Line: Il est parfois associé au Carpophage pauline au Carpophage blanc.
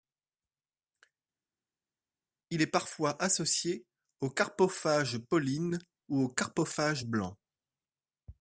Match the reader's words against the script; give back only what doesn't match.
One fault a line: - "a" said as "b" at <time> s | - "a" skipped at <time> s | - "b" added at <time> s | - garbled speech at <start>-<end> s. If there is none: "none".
- "ou" added at 6.1 s